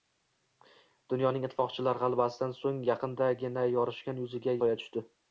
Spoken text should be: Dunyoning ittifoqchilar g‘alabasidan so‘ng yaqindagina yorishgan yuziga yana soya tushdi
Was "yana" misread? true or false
true